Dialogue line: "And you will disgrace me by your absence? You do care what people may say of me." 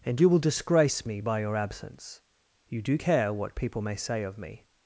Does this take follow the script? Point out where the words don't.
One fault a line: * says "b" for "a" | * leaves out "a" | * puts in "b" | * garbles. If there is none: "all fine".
all fine